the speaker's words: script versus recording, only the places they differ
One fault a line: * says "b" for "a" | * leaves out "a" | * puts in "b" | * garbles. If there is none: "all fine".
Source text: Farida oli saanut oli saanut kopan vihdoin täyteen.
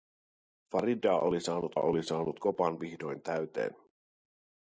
all fine